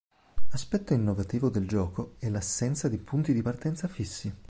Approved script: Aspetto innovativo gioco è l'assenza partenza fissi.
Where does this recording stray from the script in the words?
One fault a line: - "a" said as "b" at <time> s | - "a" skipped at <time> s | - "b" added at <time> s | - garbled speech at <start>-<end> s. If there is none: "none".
- "del" added at 1.5 s
- "di punti di" added at 2.9 s